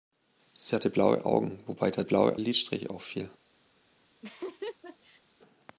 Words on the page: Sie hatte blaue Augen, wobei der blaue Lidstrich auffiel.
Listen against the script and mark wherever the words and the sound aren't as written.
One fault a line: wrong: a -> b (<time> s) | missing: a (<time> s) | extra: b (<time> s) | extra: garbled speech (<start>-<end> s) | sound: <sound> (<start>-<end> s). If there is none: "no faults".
sound: laugh (4.2-5.2 s)